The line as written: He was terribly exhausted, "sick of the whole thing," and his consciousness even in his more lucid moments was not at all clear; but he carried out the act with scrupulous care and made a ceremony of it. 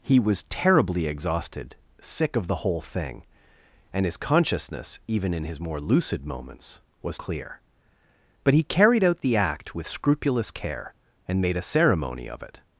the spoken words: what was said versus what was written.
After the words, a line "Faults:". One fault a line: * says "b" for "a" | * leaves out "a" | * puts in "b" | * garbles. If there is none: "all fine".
He was terribly exhausted, "sick of the whole thing," and his consciousness even in his more lucid moments was clear; but he carried out the act with scrupulous care and made a ceremony of it.
Faults:
* leaves out "not at all"